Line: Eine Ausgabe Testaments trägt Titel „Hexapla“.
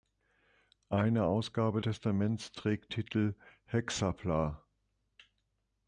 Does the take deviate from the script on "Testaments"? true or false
false